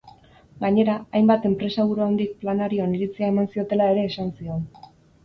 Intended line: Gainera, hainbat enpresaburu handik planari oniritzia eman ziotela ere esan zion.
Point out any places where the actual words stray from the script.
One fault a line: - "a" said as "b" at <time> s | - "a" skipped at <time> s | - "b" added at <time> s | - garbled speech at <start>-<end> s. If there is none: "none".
none